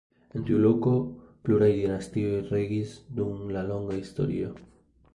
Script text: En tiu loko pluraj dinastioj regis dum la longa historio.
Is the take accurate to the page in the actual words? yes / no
yes